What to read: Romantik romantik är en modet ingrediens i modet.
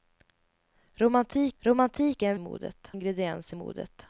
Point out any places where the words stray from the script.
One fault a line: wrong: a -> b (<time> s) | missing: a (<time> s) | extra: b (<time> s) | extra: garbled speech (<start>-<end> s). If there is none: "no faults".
no faults